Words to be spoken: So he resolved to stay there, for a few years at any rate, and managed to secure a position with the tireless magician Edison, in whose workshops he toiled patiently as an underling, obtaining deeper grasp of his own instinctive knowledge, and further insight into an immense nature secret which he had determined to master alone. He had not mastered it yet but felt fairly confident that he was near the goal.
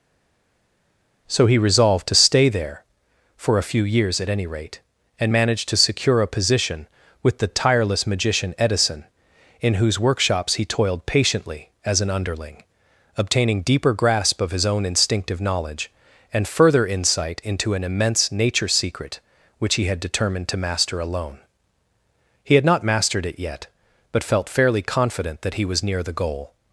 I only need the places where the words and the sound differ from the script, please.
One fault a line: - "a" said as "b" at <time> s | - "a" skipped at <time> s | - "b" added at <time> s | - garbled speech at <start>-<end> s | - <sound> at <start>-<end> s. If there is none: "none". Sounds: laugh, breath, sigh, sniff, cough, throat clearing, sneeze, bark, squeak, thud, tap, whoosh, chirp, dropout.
none